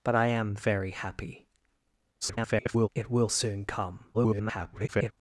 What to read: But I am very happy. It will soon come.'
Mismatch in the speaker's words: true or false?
true